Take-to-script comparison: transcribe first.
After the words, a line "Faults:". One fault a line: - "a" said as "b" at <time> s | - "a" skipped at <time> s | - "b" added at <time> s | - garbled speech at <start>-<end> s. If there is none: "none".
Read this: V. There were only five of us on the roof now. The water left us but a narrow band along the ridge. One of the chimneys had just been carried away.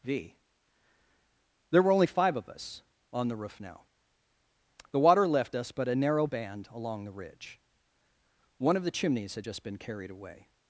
V. There were only five of us on the roof now. The water left us but a narrow band along the ridge. One of the chimneys had just been carried away.
Faults:
none